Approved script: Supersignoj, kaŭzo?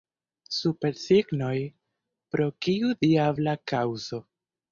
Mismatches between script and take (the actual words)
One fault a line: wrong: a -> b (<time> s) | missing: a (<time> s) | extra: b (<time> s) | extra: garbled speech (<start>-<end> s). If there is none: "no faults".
extra: pro kiu diabla (2.4 s)